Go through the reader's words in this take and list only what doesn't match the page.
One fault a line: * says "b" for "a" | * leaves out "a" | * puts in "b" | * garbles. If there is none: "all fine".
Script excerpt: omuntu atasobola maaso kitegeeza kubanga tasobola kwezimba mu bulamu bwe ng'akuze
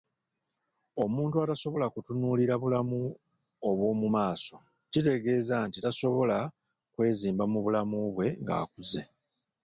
* puts in "kutunuulira bulamu obw'omu"
* says "nti" for "kubanga"